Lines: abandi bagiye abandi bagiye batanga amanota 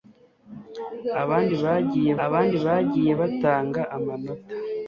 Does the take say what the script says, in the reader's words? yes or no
yes